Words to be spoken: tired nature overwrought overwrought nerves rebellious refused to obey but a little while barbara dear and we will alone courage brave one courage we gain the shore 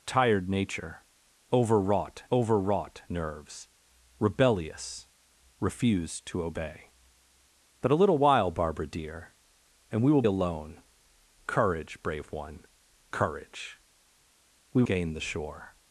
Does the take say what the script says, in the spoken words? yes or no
yes